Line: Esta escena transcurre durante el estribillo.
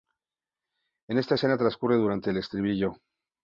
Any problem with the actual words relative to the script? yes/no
no